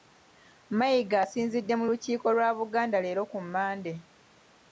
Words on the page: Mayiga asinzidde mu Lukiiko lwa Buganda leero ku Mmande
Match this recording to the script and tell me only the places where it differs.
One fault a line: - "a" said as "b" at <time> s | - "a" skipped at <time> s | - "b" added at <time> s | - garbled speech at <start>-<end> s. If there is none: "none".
none